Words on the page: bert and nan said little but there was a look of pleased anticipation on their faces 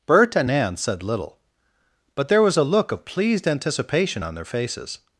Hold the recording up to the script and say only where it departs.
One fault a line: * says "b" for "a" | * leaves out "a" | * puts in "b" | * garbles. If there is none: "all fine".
all fine